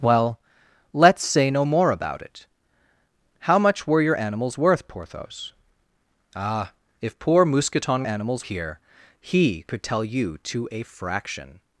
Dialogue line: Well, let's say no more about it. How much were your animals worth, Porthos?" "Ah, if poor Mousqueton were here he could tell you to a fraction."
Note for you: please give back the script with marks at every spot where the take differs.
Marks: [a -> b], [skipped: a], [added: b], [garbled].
Well, let's say no more about it. How much were your animals worth, Porthos?" "Ah, if poor Mousqueton [were -> animals] here he could tell you to a fraction."